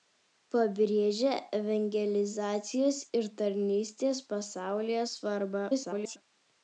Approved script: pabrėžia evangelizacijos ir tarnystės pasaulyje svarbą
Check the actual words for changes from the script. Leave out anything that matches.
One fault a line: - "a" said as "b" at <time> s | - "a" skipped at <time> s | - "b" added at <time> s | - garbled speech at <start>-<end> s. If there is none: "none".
- garbled speech at 5.7-6.2 s